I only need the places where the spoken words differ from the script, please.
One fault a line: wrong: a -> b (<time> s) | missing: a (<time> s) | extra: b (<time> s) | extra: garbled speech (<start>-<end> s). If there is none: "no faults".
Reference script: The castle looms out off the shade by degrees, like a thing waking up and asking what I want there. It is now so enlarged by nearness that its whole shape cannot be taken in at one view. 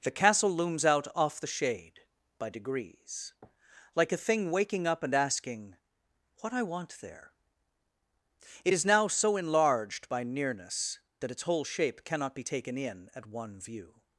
no faults